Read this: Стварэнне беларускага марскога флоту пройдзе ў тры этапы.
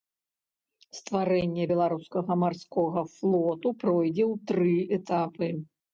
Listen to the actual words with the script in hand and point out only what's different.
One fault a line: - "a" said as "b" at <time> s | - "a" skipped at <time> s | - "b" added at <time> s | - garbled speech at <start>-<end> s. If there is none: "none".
none